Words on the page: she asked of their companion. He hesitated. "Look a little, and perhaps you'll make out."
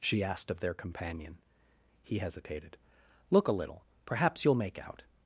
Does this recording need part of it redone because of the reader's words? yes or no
yes